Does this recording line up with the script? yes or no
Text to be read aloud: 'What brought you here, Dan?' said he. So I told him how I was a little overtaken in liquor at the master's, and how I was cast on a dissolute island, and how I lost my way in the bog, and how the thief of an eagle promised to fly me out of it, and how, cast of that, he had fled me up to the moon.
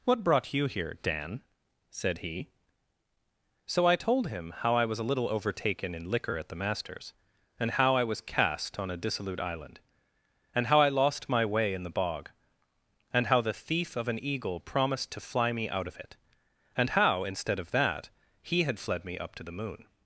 no